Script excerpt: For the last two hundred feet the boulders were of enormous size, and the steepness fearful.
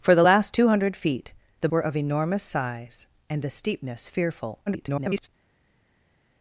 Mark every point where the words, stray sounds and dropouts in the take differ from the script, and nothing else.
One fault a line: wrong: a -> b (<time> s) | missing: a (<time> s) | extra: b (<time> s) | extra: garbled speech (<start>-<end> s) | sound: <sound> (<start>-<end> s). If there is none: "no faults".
missing: boulders (1.7 s)
extra: garbled speech (4.7-5.3 s)